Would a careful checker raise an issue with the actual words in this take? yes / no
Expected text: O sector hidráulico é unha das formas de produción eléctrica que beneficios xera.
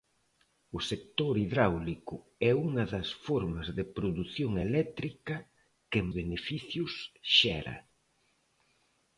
no